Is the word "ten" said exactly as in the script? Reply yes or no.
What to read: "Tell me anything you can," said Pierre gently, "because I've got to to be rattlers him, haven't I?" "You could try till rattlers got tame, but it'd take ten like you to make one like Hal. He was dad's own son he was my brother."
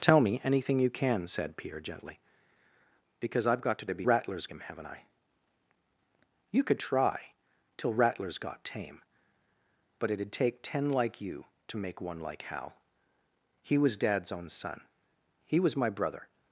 yes